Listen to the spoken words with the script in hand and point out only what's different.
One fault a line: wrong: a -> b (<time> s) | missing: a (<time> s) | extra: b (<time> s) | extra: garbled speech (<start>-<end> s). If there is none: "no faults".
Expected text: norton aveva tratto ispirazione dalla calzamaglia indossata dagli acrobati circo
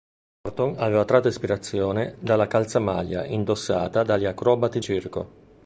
no faults